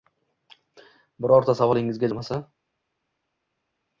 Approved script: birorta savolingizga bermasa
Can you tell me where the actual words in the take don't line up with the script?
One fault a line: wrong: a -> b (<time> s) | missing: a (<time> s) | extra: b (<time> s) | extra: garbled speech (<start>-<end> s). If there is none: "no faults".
no faults